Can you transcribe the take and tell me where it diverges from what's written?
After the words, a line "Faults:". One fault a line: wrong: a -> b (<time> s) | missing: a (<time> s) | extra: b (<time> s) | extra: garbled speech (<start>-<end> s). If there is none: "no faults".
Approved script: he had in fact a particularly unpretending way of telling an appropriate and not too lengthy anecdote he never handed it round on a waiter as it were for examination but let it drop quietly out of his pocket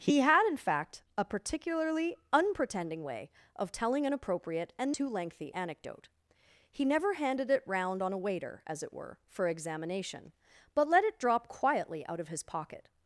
he had in fact a particularly unpretending way of telling an appropriate and too lengthy anecdote he never handed it round on a waiter as it were for examination but let it drop quietly out of his pocket
Faults:
missing: not (4.9 s)